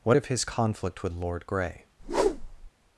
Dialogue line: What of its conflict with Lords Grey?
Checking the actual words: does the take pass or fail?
fail